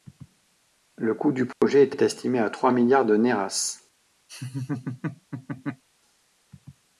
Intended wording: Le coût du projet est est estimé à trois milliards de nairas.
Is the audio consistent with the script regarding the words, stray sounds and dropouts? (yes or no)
no